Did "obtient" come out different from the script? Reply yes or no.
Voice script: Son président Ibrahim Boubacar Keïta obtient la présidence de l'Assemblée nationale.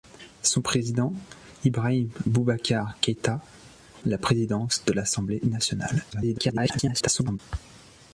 yes